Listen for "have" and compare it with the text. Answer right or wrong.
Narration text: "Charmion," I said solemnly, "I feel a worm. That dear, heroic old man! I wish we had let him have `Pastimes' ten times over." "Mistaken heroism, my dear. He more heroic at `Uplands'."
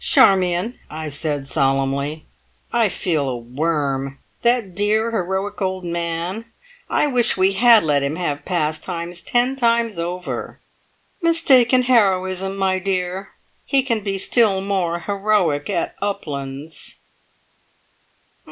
right